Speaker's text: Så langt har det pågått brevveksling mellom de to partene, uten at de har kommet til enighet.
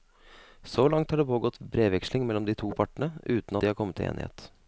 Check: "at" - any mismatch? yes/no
yes